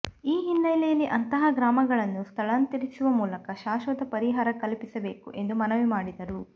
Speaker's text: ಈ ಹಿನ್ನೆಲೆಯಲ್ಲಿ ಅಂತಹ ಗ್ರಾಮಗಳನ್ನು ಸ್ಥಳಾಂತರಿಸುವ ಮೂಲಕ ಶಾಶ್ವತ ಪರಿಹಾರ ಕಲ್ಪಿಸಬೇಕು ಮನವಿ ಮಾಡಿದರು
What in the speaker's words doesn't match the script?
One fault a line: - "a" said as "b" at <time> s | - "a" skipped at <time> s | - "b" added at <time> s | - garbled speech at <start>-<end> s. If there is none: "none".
- "ಎಂದು" added at 5.3 s